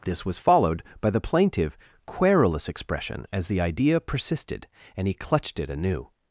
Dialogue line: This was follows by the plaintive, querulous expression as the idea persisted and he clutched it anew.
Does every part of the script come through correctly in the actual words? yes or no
no